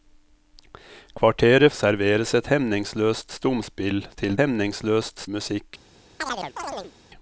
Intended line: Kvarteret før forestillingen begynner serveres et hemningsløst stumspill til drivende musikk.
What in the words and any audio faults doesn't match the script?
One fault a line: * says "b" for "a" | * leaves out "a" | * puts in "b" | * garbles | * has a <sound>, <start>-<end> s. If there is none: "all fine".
* leaves out "før forestillingen begynner"
* says "hemningsløst" for "drivende"
* has a chirp, 6.2-6.9 s